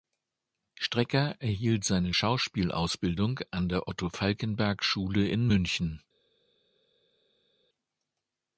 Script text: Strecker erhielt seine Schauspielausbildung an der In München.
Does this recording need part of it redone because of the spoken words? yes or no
yes